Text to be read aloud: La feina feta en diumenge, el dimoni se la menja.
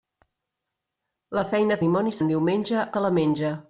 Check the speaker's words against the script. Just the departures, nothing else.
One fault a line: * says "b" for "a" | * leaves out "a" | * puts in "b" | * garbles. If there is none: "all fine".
* says "dimoni" for "feta"
* leaves out "el dimoni"